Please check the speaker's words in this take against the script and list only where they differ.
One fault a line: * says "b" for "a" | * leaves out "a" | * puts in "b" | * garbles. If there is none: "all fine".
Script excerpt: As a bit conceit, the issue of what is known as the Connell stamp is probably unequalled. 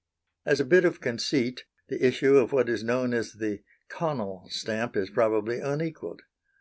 * puts in "of"